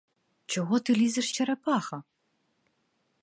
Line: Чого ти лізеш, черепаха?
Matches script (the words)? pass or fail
pass